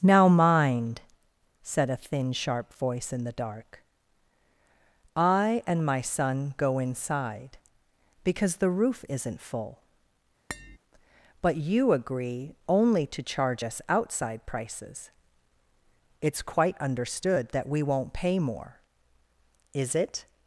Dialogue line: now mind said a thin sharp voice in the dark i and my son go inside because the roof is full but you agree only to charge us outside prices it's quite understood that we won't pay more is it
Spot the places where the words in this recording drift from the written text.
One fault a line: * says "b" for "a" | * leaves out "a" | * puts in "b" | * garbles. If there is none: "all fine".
* says "isn't" for "is"